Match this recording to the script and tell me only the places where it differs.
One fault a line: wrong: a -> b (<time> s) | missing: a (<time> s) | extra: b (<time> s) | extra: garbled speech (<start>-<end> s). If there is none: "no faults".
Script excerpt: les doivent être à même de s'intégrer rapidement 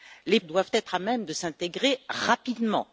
no faults